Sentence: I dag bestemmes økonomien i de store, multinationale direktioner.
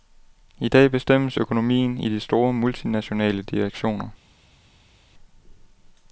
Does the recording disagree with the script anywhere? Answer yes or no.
no